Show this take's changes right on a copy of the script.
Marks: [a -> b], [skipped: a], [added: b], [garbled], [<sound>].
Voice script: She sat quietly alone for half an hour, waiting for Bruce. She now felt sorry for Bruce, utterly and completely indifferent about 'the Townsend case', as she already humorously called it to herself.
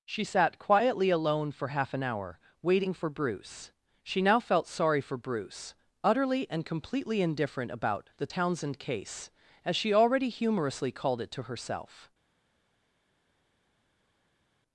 She sat quietly alone for half an hour, waiting for Bruce. She now felt sorry for Bruce, utterly and completely indifferent about 'the Townsend case', as she already humorously called it to herself.